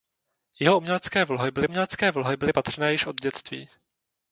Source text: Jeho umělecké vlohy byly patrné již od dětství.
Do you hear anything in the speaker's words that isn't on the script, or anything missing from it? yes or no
yes